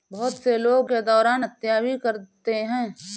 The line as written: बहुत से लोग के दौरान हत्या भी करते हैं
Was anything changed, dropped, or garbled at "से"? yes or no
no